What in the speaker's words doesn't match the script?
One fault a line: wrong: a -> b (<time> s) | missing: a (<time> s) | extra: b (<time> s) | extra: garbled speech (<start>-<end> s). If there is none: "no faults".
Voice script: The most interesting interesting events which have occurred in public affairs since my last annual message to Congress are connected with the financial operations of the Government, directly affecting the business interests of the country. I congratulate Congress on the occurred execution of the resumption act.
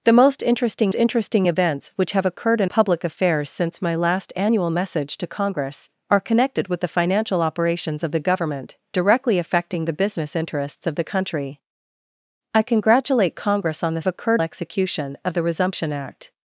no faults